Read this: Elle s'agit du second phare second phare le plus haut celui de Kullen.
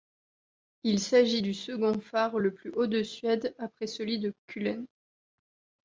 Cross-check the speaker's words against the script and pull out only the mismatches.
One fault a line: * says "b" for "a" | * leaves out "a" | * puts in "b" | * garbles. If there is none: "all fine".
* says "Il" for "Elle"
* leaves out "second phare"
* puts in "de Suède après"